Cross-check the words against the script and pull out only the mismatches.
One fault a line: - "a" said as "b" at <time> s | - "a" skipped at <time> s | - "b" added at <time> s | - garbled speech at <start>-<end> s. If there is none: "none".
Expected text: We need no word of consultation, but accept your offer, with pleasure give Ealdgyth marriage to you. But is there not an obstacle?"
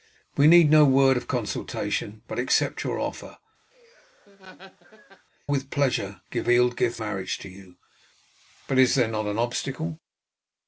none